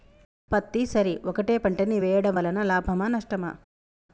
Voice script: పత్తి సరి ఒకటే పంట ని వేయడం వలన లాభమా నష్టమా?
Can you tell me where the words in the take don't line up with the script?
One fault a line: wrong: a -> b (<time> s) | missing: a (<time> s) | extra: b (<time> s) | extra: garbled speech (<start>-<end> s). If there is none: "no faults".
no faults